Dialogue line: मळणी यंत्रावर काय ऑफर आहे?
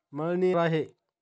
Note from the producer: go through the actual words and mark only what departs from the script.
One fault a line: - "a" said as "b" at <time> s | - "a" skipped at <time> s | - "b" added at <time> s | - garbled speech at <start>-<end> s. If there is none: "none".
- "यंत्रावर काय ऑफर" skipped at 0.5 s